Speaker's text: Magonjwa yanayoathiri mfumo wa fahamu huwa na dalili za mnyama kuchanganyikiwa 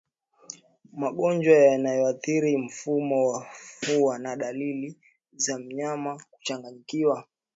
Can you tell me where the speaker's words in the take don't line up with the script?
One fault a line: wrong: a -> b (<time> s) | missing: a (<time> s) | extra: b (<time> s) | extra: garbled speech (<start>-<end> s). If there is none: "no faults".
missing: fahamu (3.5 s)